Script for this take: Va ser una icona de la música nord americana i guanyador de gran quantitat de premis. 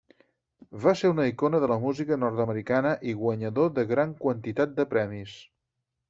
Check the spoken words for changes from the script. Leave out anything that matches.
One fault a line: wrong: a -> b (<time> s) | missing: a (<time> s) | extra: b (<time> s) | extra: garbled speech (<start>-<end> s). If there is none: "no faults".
no faults